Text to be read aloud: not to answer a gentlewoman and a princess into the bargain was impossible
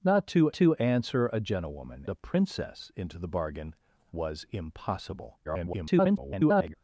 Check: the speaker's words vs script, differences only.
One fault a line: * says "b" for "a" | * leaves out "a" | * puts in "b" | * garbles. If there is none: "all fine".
* puts in "to"
* leaves out "and"
* garbles